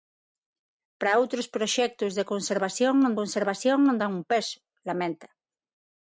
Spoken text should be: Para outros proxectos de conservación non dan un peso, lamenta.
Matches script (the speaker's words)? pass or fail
fail